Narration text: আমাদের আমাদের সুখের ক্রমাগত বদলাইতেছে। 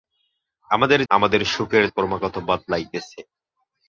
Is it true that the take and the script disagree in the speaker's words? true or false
false